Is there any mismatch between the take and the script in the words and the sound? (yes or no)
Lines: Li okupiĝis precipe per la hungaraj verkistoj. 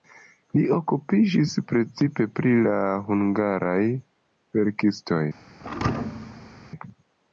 yes